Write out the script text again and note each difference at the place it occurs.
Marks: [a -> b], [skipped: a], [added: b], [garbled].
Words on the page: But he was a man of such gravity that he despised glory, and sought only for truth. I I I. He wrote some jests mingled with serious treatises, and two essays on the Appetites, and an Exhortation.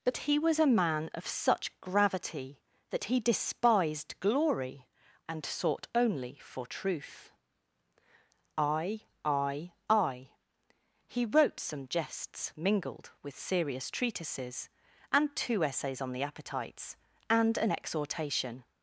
But he was a man of such gravity that he despised glory, and sought only for truth. I I I. He wrote some jests mingled with serious treatises, and two essays on the Appetites, and an Exhortation.